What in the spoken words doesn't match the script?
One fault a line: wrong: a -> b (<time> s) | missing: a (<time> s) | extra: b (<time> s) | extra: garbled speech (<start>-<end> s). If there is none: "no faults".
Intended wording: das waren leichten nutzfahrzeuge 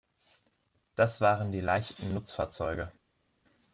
extra: die (1.5 s)